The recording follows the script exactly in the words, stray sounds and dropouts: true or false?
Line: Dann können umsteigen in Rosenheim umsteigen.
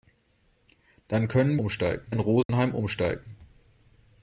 false